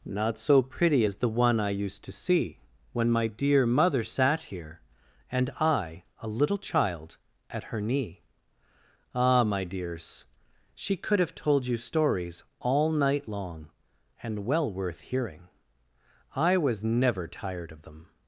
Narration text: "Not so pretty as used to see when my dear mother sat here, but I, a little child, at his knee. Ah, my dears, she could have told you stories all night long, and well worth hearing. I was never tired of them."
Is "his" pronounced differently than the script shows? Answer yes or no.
yes